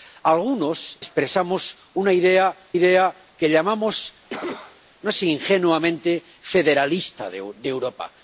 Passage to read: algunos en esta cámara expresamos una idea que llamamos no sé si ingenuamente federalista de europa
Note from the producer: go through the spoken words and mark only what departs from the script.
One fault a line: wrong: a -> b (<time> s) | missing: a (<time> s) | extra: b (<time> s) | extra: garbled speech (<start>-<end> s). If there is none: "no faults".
missing: en esta cámara (1.0 s)
extra: idea (2.7 s)
missing: sé (5.1 s)